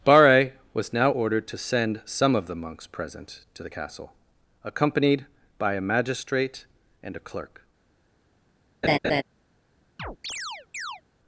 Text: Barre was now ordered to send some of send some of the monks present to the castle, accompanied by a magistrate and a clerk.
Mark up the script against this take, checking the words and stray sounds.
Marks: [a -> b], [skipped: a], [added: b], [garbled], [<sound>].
Barre was now ordered to send some of [skipped: send some of] the monks present to the castle, accompanied by a magistrate and a clerk. [laugh] [chirp]